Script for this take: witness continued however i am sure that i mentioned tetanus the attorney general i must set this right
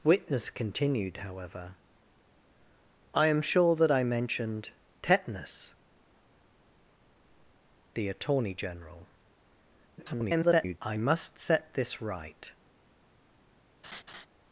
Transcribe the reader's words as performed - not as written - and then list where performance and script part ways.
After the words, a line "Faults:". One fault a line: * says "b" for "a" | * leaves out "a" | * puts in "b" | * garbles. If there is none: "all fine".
witness continued however i am sure that i mentioned tetanus the attorney general [garbled] i must set this right
Faults:
* garbles